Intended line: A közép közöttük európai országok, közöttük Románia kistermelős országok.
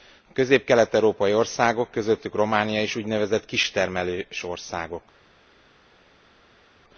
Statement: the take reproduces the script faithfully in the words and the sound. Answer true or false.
false